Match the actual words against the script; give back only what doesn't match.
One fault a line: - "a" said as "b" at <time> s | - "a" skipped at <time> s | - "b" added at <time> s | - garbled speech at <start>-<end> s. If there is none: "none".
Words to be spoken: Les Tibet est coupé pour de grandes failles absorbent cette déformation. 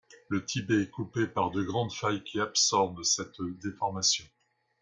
- "Les" said as "Le" at 0.3 s
- "pour" said as "par" at 1.3 s
- "qui" added at 2.2 s